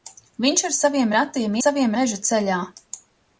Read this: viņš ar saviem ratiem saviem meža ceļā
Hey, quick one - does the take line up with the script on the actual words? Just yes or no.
yes